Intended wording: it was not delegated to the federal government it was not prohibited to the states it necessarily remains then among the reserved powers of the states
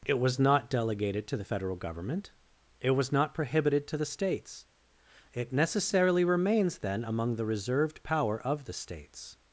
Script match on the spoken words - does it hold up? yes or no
no